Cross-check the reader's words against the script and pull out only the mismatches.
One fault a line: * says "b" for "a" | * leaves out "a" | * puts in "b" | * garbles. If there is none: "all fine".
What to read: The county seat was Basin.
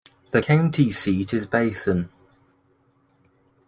* says "is" for "was"